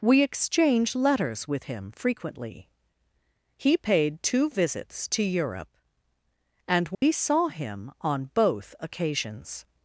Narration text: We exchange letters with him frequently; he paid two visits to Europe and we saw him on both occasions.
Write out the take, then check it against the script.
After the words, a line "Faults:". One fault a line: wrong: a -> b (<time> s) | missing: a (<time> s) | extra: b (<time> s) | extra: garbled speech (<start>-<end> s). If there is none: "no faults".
We exchange letters with him frequently; he paid two visits to Europe and we saw him on both occasions.
Faults:
no faults